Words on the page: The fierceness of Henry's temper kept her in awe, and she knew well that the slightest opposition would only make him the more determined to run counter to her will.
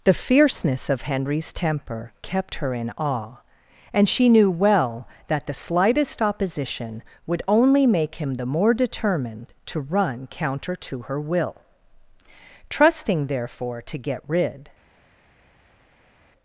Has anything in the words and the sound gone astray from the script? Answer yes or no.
yes